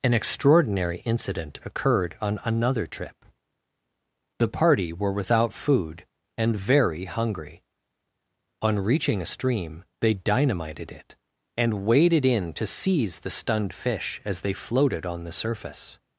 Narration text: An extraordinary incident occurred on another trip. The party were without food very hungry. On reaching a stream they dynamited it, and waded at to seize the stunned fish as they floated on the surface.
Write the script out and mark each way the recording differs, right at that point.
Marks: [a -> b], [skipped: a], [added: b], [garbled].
An extraordinary incident occurred on another trip. The party were without food [added: and] very hungry. On reaching a stream they dynamited it, and waded [at -> in] to seize the stunned fish as they floated on the surface.